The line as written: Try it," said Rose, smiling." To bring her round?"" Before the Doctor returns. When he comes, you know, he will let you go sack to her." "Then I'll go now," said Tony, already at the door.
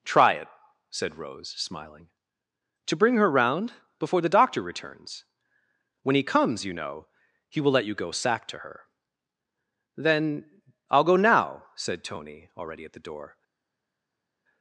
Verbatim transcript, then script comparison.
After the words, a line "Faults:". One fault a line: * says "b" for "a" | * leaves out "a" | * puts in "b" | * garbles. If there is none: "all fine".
Try it," said Rose, smiling." To bring her round?"" Before the Doctor returns. When he comes, you know, he will let you go sack to her." "Then I'll go now," said Tony, already at the door.
Faults:
all fine